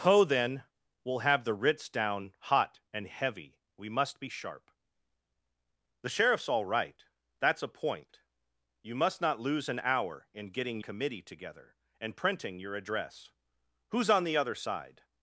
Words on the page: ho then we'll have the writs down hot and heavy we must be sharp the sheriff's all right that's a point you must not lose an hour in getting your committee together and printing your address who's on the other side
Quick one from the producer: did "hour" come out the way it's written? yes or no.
yes